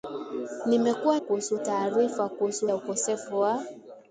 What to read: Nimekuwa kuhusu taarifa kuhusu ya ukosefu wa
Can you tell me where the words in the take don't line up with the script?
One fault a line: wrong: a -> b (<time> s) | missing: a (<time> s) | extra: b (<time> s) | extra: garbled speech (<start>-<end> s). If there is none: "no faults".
no faults